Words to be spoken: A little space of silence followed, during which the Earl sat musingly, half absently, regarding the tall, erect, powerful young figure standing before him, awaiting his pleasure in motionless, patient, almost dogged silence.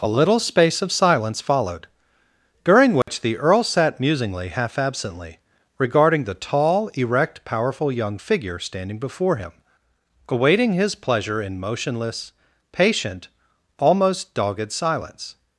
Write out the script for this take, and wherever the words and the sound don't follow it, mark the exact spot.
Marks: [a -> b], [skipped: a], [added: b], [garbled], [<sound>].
A little space of silence followed, during which [dropout] the Earl sat musingly, half absently, regarding the tall, erect, powerful young figure standing before him, awaiting his pleasure in motionless, patient, almost dogged silence.